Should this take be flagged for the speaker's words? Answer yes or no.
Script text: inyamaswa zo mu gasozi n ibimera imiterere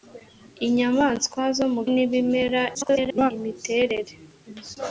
yes